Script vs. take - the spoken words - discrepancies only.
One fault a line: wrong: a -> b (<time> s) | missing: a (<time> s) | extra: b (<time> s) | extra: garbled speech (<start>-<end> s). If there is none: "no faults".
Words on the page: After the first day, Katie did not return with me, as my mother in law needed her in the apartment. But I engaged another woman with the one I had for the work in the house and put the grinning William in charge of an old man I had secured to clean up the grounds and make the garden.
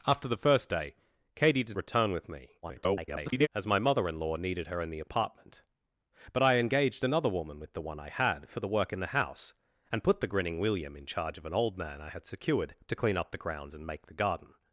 missing: not (1.8 s)
extra: garbled speech (2.6-3.5 s)